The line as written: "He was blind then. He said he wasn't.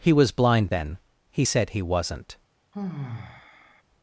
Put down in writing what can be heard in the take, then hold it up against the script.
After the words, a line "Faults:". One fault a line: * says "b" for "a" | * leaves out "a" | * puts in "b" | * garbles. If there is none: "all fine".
"He was blind then. He said he wasn't.
Faults:
all fine